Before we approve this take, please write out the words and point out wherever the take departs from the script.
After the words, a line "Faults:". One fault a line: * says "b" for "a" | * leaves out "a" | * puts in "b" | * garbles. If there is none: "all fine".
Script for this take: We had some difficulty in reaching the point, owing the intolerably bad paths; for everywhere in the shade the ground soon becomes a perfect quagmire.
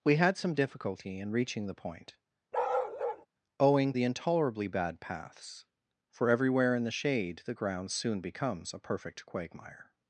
We had some difficulty in reaching the point, owing the intolerably bad paths; for everywhere in the shade the ground soon becomes a perfect quagmire.
Faults:
all fine